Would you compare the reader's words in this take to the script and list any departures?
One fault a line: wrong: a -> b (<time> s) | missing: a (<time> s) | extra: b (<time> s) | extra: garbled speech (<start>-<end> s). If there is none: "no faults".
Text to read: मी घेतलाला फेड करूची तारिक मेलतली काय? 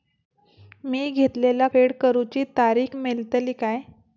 no faults